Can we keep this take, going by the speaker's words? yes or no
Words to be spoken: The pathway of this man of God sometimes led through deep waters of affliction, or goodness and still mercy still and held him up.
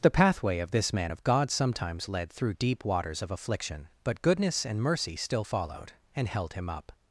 no